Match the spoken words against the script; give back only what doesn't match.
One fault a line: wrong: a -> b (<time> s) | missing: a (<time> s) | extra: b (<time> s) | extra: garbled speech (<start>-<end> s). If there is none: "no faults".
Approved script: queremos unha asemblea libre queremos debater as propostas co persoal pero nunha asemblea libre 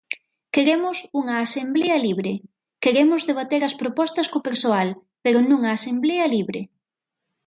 no faults